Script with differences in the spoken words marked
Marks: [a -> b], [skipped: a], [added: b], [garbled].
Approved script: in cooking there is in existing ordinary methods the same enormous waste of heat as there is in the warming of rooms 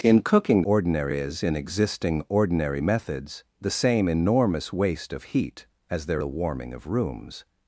in cooking [there -> ordinary] is in existing ordinary methods the same enormous waste of heat as there [skipped: is in] the warming of rooms